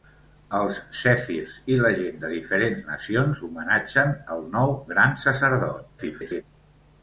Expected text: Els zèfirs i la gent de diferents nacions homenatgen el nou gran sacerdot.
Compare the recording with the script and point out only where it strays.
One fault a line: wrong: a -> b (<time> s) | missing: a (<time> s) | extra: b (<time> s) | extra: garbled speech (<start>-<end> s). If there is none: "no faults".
extra: garbled speech (6.0-6.4 s)